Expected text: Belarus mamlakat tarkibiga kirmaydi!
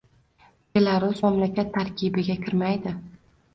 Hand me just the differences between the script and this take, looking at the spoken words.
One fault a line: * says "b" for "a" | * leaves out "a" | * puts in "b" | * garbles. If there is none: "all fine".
all fine